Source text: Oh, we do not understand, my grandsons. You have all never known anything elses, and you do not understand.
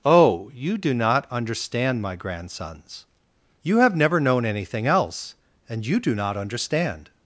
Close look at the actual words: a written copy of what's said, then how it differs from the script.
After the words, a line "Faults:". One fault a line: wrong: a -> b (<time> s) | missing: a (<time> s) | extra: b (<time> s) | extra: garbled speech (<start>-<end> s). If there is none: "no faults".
Oh, you do not understand, my grandsons. You have never known anything else, and you do not understand.
Faults:
wrong: we -> you (0.5 s)
missing: all (4.0 s)
wrong: elses -> else (4.9 s)